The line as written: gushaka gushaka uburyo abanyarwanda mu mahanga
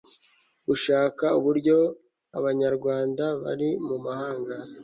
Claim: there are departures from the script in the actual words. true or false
true